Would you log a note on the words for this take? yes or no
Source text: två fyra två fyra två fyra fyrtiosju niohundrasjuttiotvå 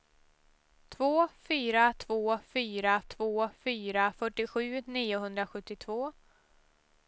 no